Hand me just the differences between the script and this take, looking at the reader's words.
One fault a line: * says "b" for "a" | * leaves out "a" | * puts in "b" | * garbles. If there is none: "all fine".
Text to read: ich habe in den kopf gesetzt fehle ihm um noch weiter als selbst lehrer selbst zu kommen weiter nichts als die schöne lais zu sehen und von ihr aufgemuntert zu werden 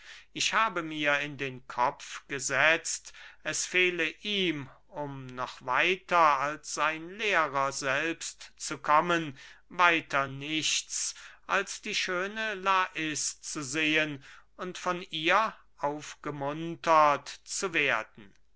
* puts in "mir"
* puts in "es"
* says "sein" for "selbst"